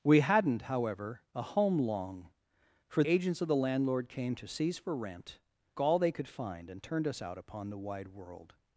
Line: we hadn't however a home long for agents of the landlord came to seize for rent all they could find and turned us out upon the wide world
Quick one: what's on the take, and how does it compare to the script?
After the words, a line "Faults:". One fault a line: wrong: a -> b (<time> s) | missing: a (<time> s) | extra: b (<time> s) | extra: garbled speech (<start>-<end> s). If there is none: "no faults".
we hadn't however a home long for agents of the landlord came to seize for rent all they could find and turned us out upon the wide world
Faults:
no faults